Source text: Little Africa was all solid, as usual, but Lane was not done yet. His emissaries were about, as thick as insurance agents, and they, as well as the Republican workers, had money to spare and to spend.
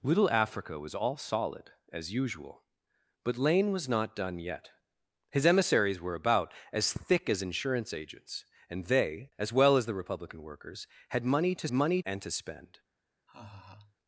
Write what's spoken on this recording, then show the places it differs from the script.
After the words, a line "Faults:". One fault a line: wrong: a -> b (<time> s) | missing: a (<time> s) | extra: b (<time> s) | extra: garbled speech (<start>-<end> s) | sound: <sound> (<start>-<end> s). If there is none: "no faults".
Little Africa was all solid, as usual, but Lane was not done yet. His emissaries were about, as thick as insurance agents, and they, as well as the Republican workers, had money to money and to spend.
Faults:
wrong: spare -> money (11.7 s)
sound: laugh (13.3-14.0 s)